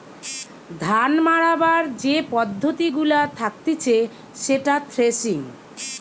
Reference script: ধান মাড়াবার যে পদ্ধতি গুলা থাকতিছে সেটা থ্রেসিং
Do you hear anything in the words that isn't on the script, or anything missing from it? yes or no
no